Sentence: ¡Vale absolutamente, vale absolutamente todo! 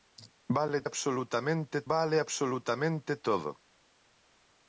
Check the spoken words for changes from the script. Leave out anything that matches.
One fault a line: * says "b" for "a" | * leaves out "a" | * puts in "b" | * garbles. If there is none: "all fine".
all fine